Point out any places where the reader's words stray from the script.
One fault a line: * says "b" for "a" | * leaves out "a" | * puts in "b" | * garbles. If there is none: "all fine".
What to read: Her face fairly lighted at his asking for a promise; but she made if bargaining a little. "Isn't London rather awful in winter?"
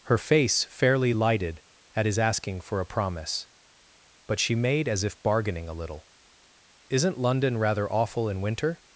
* puts in "as"